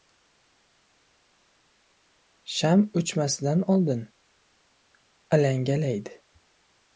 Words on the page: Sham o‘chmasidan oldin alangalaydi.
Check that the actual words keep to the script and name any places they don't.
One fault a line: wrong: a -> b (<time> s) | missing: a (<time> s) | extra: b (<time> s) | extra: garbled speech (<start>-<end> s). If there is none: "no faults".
no faults